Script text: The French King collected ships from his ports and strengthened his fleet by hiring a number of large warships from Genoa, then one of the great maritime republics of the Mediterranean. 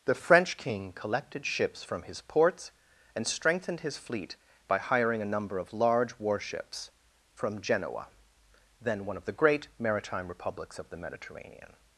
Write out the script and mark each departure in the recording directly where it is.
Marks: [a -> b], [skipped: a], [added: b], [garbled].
The French King collected ships from his ports and strengthened his fleet by hiring a number of large warships from Genoa, then one of the great maritime republics of the Mediterranean.